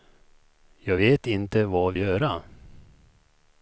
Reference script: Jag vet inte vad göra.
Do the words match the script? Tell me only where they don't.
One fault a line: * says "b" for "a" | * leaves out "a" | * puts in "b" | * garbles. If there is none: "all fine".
all fine